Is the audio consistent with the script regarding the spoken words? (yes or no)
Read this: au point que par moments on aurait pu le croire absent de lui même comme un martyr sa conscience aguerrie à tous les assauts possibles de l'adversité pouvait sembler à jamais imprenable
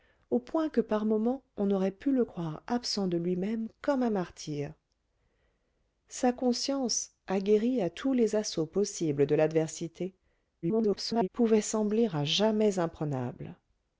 no